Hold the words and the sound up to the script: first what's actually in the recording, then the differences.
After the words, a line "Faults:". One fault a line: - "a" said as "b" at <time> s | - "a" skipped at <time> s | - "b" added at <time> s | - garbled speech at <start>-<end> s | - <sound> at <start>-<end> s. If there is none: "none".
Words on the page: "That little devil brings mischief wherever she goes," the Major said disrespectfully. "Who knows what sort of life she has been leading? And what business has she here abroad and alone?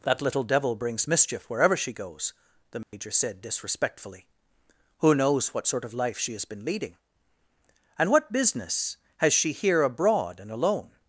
"That little devil brings mischief wherever she goes," the Major said disrespectfully. "Who knows what sort of life she has been leading? And what business has she here abroad and alone?
Faults:
- dropout at 2.8-2.9 s